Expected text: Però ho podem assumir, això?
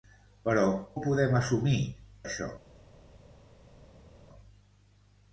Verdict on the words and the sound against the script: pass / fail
pass